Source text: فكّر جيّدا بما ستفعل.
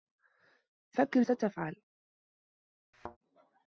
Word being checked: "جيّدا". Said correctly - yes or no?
no